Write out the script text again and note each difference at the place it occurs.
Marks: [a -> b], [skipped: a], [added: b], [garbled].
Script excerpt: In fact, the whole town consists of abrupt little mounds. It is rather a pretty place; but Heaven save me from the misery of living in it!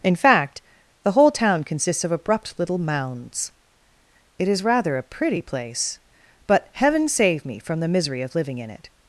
In fact, the whole town consists of abrupt little mounds. It is rather a pretty place; but Heaven save me from the misery of living in it!